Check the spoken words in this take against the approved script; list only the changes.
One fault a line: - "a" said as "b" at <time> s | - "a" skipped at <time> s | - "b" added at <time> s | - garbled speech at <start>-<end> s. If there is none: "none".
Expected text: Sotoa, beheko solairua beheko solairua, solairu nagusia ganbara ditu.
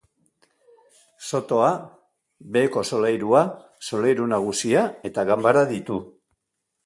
- "beheko solairua" skipped at 3.4 s
- "eta" added at 5.1 s